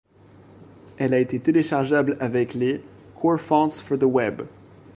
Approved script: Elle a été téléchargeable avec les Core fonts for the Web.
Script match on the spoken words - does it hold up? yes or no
yes